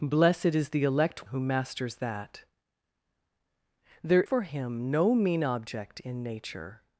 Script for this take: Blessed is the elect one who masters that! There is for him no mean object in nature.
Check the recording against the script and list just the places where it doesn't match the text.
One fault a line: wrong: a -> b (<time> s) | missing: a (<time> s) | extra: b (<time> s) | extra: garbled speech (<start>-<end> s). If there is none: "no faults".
missing: one (1.3 s)
missing: is (4.2 s)